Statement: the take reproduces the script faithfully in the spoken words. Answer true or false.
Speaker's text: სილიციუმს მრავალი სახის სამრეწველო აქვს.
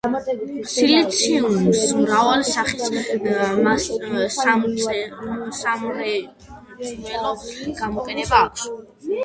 false